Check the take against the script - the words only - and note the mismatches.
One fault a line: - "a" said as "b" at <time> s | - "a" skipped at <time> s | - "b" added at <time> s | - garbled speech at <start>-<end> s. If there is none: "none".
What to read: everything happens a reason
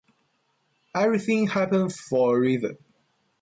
- "for" added at 2.0 s